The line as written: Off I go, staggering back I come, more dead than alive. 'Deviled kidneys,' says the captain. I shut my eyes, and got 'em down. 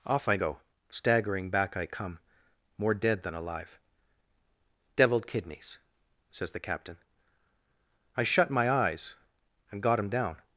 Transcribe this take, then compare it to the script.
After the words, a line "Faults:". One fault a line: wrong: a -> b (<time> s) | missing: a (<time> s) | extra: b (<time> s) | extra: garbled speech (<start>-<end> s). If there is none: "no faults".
Off I go, staggering back I come, more dead than alive. 'Deviled kidneys,' says the captain. I shut my eyes, and got 'him down.
Faults:
wrong: em -> him (10.0 s)